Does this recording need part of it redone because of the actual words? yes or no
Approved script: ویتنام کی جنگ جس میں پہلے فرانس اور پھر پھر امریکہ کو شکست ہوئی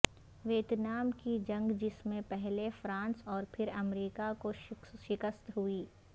yes